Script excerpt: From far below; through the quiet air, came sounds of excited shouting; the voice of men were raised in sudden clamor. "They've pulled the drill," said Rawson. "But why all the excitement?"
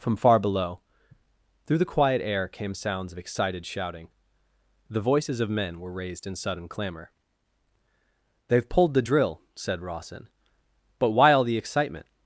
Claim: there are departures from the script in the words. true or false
true